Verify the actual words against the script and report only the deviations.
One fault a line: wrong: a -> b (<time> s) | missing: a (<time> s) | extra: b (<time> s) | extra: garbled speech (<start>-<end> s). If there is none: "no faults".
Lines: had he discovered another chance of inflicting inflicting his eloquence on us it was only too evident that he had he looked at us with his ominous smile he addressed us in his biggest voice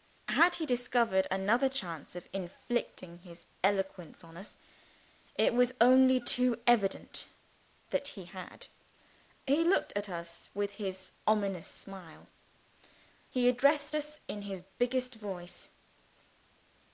missing: inflicting (3.2 s)